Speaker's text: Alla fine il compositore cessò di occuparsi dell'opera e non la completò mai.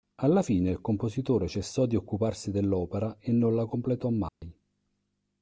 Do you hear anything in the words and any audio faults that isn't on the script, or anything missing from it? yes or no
yes